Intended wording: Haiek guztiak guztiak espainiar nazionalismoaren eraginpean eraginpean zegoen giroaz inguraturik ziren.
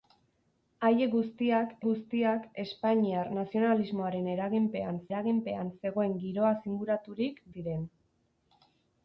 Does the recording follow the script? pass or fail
pass